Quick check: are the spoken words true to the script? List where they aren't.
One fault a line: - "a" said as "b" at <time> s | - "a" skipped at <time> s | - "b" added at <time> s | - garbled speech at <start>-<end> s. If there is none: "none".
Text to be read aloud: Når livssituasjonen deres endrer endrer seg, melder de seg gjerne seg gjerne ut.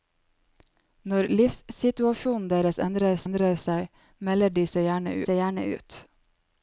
none